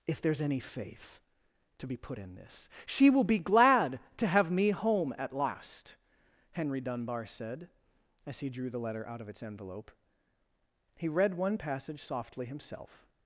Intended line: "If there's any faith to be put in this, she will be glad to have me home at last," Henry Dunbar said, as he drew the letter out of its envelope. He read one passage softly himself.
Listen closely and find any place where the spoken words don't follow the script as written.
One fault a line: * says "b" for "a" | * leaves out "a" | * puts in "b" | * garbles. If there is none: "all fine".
all fine